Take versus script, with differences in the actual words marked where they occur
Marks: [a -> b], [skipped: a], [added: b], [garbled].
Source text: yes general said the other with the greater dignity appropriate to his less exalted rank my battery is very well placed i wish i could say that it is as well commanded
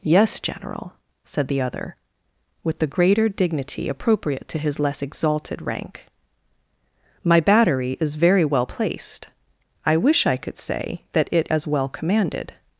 yes general said the other with the greater dignity appropriate to his less exalted rank my battery is very well placed i wish i could say that it [skipped: is] as well commanded